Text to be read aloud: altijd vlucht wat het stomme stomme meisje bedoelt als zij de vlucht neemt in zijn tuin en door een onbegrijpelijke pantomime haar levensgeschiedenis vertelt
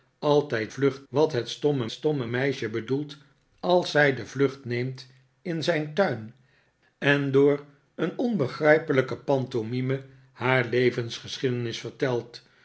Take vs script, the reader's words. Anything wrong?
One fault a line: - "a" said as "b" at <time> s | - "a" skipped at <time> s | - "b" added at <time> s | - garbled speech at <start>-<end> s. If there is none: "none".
none